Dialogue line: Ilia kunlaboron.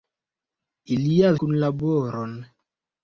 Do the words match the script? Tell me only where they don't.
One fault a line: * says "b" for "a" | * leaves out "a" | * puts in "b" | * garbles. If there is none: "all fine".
all fine